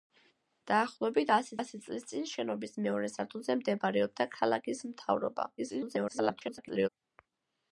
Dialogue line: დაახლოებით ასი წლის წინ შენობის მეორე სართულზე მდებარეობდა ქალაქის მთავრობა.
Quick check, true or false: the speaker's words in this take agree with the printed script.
false